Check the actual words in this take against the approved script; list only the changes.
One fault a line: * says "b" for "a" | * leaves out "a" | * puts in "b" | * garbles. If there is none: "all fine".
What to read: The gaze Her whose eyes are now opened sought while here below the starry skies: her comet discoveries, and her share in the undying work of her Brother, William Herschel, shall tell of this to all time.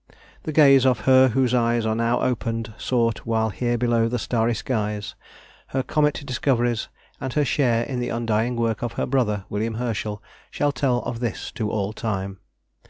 * puts in "of"